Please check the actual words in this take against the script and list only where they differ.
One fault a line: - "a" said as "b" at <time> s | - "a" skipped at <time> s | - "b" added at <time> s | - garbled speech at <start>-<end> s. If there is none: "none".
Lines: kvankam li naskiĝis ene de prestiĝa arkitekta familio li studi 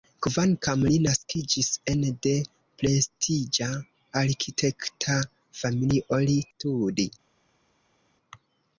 none